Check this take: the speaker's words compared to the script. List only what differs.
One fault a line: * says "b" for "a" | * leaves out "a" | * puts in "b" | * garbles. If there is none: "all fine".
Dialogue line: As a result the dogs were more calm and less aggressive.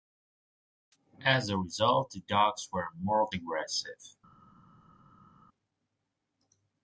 * leaves out "calm and less"